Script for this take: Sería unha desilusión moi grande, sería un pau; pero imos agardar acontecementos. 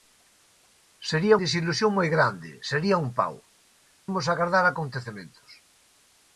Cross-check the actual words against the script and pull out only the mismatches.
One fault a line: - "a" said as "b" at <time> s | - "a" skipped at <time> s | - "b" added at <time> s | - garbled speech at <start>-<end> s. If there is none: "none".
- "unha" skipped at 1.4 s
- "pero" skipped at 3.3 s